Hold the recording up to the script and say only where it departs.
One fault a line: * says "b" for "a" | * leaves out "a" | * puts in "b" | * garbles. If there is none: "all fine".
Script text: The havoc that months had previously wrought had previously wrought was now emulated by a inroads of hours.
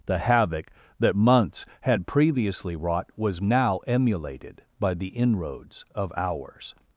* leaves out "had previously wrought"
* says "the" for "a"